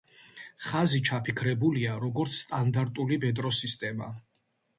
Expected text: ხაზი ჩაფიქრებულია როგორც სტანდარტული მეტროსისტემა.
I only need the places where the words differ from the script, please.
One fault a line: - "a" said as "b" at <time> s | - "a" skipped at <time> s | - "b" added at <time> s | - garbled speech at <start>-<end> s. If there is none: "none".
none